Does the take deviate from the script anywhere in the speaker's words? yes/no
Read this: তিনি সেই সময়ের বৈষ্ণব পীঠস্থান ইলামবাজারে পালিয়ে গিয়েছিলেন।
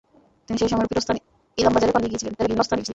yes